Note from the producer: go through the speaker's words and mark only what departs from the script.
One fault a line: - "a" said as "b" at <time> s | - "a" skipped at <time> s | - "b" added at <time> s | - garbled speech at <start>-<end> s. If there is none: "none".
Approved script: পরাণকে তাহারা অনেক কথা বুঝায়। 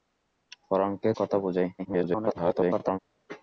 - "তাহারা অনেক" skipped at 1.1 s
- garbled speech at 1.8-3.0 s